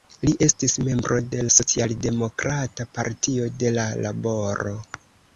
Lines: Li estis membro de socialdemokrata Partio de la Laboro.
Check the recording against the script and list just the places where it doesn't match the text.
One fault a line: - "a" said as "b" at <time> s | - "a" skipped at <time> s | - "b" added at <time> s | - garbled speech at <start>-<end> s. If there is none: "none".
none